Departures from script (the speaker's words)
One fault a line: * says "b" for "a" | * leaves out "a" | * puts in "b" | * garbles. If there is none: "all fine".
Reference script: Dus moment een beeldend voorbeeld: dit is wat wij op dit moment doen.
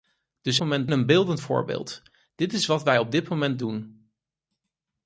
all fine